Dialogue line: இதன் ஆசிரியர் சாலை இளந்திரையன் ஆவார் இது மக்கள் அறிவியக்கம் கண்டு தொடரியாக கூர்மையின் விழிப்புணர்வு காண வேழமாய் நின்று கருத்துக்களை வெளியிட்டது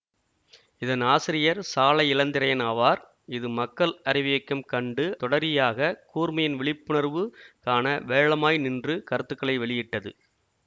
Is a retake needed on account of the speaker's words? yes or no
no